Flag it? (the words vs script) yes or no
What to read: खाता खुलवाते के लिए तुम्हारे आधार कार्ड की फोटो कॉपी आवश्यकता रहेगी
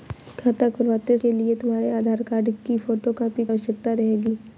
no